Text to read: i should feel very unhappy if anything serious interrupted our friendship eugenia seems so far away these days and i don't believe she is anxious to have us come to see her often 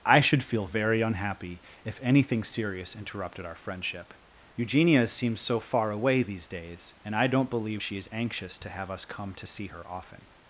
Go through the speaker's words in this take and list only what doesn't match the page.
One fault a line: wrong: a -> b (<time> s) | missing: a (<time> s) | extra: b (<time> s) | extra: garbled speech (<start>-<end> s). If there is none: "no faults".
no faults